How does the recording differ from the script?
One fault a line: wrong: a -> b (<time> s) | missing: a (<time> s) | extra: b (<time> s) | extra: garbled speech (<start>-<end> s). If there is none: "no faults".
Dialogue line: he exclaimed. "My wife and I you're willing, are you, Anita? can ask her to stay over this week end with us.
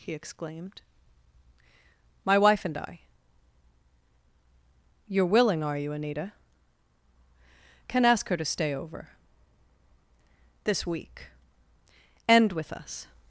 no faults